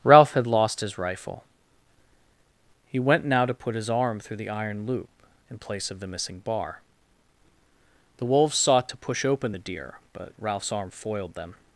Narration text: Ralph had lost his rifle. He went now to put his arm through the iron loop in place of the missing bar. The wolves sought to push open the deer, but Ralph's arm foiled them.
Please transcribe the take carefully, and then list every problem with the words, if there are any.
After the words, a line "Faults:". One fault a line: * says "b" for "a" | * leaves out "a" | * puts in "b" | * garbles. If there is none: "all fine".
Ralph had lost his rifle. He went now to put his arm through the iron loop in place of the missing bar. The wolves sought to push open the deer, but Ralph's arm foiled them.
Faults:
all fine